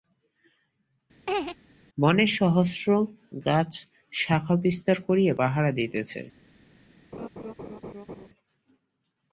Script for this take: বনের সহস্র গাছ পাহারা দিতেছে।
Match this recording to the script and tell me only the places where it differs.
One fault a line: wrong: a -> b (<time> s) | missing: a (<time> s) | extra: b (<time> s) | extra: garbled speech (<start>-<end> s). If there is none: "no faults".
extra: শাখা বিস্তার করিয়া (4.1 s)